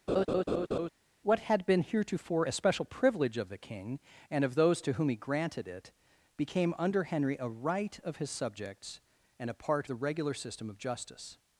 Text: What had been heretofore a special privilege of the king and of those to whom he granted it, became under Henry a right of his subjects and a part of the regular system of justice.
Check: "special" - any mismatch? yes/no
no